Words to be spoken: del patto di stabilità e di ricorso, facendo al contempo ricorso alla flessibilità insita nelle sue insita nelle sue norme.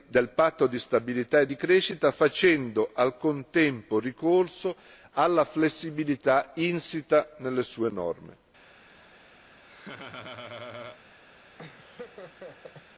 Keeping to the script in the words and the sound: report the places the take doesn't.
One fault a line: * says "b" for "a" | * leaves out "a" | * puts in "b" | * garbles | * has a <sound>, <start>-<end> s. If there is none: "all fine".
* says "crescita" for "ricorso"
* leaves out "insita nelle sue"
* has a laugh, 9.6-11.0 s
* has a laugh, 11.6-12.8 s